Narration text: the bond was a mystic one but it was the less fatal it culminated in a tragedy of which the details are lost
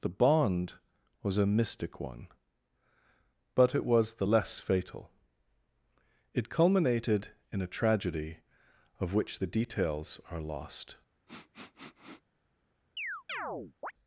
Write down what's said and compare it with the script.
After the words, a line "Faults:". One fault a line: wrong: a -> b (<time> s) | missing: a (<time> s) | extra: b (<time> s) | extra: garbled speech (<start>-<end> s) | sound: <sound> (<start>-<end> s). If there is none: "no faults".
the bond was a mystic one but it was the less fatal it culminated in a tragedy of which the details are lost
Faults:
sound: sniff (11.3-12.2 s)
sound: chirp (13.0-13.9 s)